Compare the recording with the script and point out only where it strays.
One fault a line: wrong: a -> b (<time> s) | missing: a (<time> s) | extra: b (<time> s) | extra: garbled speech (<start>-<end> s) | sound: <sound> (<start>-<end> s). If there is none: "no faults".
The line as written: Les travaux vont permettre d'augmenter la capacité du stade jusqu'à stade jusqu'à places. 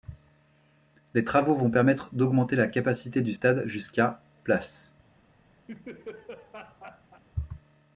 missing: stade jusqu'à (4.2 s)
sound: laugh (5.7-7.2 s)